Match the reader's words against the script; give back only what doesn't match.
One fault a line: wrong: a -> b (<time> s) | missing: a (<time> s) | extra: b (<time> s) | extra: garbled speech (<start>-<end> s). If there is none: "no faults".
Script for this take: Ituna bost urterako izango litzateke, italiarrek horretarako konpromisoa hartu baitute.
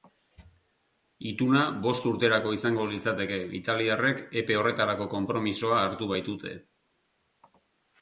extra: epe (4.4 s)